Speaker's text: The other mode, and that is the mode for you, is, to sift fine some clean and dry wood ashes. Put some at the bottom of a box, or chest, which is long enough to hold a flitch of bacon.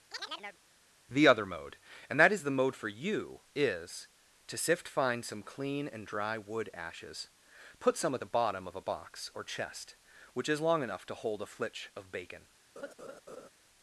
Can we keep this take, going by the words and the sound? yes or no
no